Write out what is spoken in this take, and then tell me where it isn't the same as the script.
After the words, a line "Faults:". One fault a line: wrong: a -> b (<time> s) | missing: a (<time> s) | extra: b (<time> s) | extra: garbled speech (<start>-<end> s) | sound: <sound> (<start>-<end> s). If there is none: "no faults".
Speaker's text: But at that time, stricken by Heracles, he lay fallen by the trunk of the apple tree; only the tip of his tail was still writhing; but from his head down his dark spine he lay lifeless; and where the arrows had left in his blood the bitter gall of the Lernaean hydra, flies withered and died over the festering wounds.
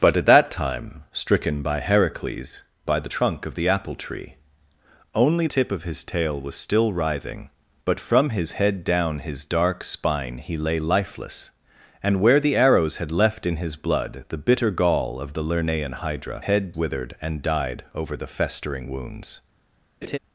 But at that time, stricken by Heracles, by the trunk of the apple tree; only tip of his tail was still writhing; but from his head down his dark spine he lay lifeless; and where the arrows had left in his blood the bitter gall of the Lernaean hydra, head withered and died over the festering wounds.
Faults:
missing: he lay fallen (2.6 s)
missing: the (5.5 s)
wrong: flies -> head (16.4 s)
sound: laugh (20.0-20.2 s)